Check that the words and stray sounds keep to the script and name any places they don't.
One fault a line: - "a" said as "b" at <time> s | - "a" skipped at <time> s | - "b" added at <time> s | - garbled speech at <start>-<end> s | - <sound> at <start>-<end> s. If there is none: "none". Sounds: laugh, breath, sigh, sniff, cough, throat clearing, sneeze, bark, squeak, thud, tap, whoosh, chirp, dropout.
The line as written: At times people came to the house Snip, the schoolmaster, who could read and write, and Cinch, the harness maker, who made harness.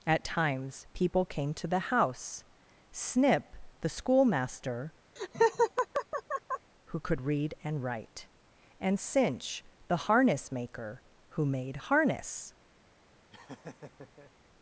- laugh at 5.2-6.7 s
- laugh at 13.3-14.3 s